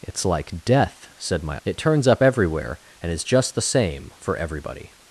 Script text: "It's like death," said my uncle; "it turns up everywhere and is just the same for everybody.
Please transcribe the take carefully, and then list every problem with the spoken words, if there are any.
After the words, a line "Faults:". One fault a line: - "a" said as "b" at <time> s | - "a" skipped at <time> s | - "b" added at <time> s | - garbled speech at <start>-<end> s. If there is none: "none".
"It's like death," said my; "it turns up everywhere and is just the same for everybody.
Faults:
- "uncle" skipped at 1.6 s